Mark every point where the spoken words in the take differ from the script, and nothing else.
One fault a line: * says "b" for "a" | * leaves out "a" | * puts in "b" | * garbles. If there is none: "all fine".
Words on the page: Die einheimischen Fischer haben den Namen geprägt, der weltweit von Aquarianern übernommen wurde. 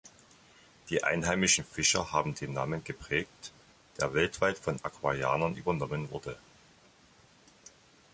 all fine